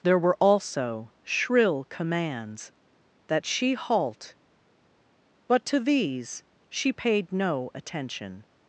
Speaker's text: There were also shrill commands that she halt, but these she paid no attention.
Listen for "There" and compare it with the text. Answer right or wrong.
right